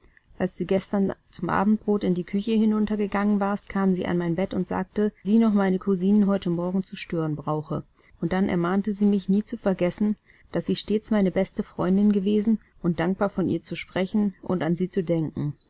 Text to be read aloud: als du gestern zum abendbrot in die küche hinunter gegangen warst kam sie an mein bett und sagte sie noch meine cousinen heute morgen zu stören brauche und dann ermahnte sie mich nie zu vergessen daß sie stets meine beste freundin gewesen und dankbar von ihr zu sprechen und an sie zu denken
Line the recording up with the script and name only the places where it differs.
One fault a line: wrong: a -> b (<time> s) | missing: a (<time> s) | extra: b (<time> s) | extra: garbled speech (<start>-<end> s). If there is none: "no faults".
no faults